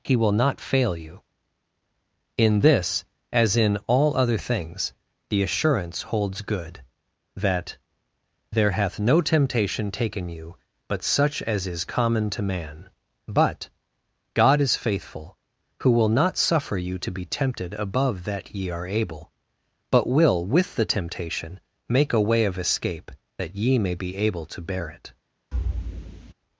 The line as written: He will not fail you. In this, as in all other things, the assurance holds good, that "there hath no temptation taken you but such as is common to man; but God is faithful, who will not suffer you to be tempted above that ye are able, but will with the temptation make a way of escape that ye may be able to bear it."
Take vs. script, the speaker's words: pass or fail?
pass